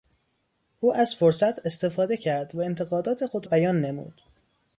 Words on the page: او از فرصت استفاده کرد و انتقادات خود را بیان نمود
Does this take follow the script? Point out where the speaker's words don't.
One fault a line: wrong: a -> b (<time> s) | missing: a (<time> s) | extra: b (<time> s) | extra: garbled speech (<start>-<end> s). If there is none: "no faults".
missing: را (3.5 s)